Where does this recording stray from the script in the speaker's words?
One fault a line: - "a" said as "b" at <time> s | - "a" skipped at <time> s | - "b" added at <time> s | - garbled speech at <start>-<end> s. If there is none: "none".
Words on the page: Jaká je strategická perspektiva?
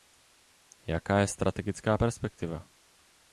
none